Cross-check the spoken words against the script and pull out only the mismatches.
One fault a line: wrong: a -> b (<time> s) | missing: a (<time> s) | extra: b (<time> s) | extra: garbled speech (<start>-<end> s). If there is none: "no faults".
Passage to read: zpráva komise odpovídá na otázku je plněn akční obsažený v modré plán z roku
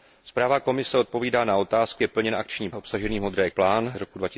no faults